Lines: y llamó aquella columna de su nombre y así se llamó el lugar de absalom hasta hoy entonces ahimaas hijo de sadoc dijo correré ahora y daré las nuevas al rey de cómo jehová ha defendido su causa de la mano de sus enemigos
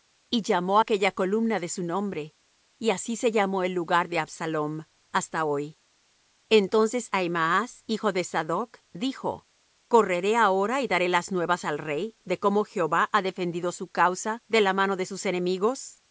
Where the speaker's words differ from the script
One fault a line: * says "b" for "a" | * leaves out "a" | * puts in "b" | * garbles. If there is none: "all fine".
all fine